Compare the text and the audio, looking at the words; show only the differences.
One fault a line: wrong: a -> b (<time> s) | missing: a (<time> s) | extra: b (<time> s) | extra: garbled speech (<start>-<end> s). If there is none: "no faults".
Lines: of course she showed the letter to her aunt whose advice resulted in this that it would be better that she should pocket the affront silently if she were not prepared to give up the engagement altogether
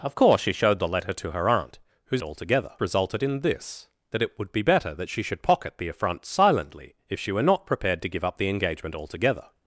wrong: advice -> altogether (2.2 s)